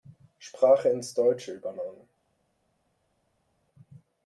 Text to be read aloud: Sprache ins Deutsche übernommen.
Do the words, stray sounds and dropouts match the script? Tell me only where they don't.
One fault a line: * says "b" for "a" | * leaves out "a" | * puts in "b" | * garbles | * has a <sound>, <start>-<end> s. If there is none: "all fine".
all fine